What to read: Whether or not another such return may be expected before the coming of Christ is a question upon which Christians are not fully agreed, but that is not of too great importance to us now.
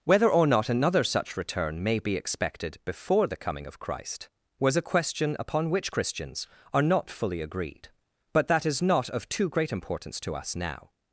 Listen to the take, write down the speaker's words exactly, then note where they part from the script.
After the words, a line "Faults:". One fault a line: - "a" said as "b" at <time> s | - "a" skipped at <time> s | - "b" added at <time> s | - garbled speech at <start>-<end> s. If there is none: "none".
Whether or not another such return may be expected before the coming of Christ was a question upon which Christians are not fully agreed, but that is not of too great importance to us now.
Faults:
- "is" said as "was" at 4.6 s